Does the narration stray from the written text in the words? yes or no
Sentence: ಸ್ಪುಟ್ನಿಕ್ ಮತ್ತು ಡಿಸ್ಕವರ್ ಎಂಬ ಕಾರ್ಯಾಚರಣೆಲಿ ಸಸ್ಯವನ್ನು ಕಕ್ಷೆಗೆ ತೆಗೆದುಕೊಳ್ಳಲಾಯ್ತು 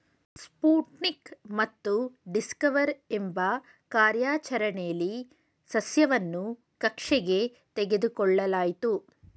no